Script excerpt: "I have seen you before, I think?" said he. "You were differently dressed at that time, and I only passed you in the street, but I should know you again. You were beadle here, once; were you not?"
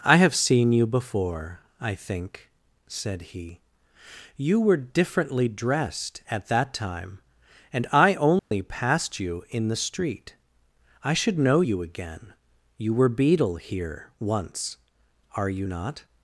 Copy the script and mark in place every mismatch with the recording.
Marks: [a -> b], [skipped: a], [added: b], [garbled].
"I have seen you before, I think?" said he. "You were differently dressed at that time, and I only passed you in the street, [skipped: but] I should know you again. You were beadle here, once; [were -> are] you not?"